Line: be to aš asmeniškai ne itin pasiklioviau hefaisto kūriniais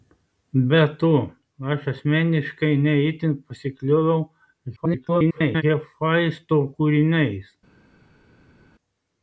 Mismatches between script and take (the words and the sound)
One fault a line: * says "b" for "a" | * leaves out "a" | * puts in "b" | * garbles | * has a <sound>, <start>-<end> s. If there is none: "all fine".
* garbles